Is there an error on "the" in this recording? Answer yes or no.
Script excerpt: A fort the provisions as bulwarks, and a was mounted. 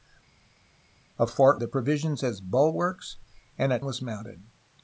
no